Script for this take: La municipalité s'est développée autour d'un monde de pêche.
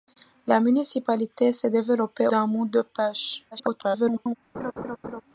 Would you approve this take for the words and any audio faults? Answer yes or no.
no